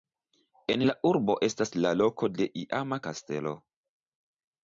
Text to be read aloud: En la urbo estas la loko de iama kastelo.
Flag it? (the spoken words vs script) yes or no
no